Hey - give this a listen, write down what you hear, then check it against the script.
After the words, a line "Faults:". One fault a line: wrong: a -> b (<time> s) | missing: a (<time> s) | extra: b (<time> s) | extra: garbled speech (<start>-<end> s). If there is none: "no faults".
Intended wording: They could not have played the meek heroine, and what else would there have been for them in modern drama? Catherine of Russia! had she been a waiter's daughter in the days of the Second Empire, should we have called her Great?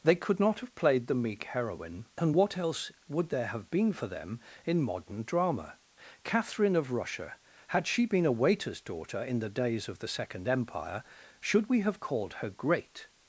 They could not have played the meek heroine, and what else would there have been for them in modern drama? Catherine of Russia! had she been a waiter's daughter in the days of the Second Empire, should we have called her Great?
Faults:
no faults